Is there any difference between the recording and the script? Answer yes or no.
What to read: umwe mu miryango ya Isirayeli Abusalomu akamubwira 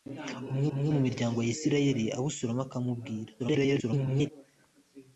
yes